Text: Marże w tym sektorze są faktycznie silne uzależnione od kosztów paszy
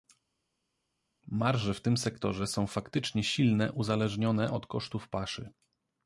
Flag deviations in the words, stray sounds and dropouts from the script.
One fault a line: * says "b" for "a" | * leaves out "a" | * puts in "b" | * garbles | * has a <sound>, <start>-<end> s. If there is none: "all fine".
all fine